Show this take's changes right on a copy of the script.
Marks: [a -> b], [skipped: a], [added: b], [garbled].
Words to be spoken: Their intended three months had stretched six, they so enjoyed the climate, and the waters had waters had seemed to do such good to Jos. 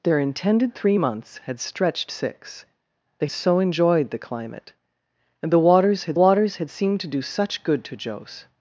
Their intended three months had stretched six, they so enjoyed the climate, and the waters had waters had seemed to do such good to Jos.